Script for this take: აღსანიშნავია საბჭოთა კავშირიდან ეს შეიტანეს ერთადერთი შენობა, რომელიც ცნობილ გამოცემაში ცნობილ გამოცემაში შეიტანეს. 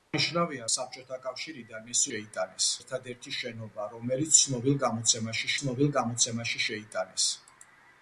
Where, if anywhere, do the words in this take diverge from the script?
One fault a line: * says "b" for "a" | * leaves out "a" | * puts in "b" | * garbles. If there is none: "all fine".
all fine